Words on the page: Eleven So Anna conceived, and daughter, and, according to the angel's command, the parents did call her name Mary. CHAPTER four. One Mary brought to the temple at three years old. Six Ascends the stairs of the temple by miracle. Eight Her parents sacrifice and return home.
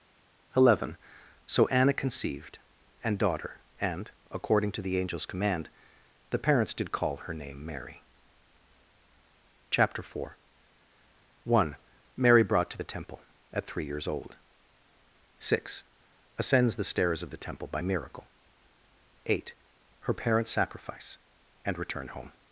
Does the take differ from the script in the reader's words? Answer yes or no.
no